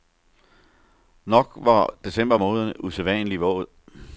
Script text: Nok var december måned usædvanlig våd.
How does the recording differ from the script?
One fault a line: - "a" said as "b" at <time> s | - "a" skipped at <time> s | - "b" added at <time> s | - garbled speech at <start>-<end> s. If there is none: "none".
none